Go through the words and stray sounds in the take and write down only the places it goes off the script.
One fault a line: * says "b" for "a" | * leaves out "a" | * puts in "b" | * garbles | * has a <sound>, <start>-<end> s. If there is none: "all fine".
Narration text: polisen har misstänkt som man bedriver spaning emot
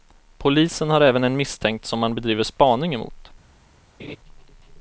* puts in "även en"
* has a laugh, 4.0-4.2 s